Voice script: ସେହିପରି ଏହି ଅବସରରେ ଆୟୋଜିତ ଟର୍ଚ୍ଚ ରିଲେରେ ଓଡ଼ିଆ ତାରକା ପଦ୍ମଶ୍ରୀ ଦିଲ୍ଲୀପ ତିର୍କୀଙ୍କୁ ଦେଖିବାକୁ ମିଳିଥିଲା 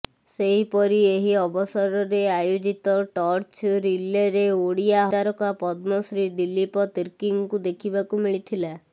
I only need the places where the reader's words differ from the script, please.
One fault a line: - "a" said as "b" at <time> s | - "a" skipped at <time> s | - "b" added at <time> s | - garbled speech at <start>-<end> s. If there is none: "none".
none